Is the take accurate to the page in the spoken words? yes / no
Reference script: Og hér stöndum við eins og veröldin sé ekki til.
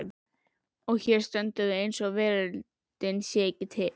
yes